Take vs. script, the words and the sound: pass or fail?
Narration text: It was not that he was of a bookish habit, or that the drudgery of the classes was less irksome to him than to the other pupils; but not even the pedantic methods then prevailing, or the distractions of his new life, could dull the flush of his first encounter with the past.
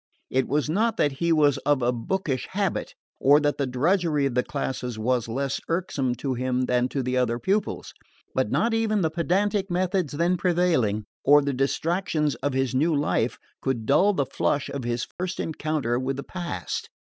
fail